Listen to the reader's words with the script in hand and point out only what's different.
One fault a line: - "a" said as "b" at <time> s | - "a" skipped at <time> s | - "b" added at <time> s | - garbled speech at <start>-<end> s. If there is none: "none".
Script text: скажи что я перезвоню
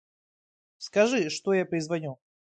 none